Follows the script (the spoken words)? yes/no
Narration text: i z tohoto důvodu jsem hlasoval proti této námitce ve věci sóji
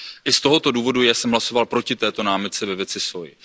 yes